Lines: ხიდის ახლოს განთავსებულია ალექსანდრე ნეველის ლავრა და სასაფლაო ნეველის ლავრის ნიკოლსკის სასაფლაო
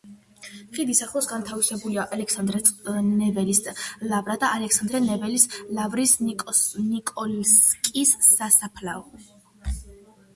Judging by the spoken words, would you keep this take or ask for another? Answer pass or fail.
fail